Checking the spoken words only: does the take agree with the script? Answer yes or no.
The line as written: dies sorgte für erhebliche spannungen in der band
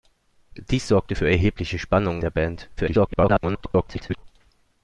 no